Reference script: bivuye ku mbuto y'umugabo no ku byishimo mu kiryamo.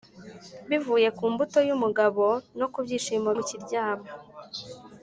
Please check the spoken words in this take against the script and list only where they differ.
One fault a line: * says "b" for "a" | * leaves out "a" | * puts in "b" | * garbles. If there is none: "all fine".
all fine